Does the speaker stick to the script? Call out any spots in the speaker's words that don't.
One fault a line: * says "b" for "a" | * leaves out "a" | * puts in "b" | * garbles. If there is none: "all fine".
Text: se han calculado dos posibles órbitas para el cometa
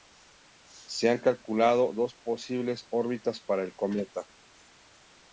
all fine